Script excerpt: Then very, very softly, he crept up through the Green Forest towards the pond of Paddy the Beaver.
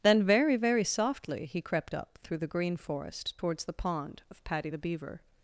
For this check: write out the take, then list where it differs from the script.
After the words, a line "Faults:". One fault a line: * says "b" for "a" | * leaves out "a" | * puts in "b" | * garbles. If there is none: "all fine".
Then very, very softly, he crept up through the Green Forest towards the pond of Paddy the Beaver.
Faults:
all fine